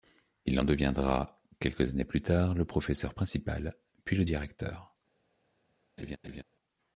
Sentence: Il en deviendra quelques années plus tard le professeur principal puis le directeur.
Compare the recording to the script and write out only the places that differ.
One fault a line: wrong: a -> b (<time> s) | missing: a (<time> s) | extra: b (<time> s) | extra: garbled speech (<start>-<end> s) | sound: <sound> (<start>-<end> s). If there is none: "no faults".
sound: laugh (6.0-6.4 s)